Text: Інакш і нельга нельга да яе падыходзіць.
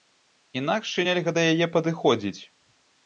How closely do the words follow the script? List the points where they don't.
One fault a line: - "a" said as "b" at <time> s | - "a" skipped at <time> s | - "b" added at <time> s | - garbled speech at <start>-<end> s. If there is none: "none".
- "нельга" skipped at 1.3 s